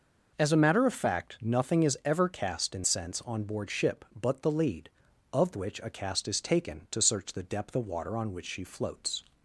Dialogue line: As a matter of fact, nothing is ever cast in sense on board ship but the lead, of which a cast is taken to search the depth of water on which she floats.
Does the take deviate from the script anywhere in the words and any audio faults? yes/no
no